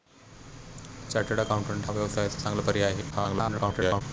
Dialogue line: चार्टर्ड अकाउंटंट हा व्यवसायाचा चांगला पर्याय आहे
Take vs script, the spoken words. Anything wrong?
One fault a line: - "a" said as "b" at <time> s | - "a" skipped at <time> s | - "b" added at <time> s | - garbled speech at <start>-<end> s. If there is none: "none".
- "हा" skipped at 1.9 s
- garbled speech at 3.1-4.0 s